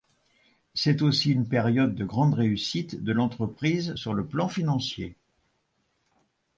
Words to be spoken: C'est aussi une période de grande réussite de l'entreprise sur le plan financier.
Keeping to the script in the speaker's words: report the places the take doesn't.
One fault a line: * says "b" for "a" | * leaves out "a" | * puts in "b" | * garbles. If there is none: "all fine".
all fine